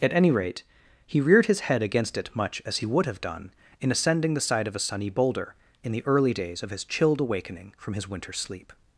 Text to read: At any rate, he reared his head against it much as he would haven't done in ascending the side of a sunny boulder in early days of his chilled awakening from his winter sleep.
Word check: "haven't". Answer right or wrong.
wrong